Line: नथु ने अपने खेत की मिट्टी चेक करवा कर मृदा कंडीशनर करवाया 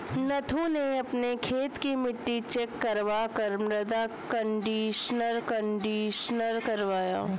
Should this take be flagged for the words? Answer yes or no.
yes